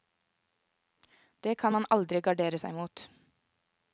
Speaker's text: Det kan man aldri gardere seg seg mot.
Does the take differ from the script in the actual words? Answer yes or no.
yes